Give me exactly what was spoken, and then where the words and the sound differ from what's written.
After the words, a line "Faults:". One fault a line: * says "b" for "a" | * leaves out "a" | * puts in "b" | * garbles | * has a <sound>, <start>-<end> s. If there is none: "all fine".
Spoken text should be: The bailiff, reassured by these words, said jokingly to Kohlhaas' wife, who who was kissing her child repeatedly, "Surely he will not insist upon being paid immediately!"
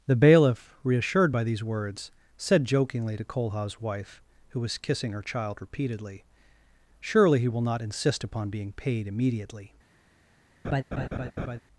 The bailiff, reassured by these words, said jokingly to Kohlhaas' wife, who was kissing her child repeatedly, "Surely he will not insist upon being paid immediately!"
Faults:
* leaves out "who"
* has a laugh, 10.6-11.6 s